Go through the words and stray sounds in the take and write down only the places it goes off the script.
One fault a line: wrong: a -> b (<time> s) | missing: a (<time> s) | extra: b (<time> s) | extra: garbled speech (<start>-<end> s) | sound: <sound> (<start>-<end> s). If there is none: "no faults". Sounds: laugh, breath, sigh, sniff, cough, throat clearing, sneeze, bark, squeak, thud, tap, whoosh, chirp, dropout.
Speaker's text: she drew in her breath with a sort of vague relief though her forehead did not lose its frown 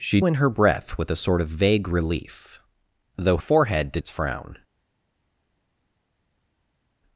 missing: drew (0.2 s)
missing: her (3.4 s)
missing: not lose (4.0 s)